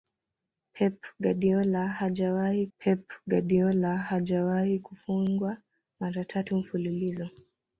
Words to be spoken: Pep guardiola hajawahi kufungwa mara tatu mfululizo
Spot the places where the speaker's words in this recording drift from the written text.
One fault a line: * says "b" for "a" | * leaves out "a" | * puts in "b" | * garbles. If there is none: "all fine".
* puts in "pep guardiola hajawahi"